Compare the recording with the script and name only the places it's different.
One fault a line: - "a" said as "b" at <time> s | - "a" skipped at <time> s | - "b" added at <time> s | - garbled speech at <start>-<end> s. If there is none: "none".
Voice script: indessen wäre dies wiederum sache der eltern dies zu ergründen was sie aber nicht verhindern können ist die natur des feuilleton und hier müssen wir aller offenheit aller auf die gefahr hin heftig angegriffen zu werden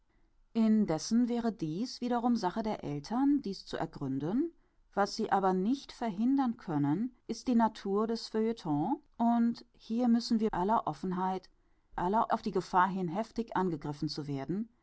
none